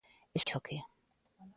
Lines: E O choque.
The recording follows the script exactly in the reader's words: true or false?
true